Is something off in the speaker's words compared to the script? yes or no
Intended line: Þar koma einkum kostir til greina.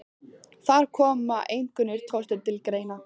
no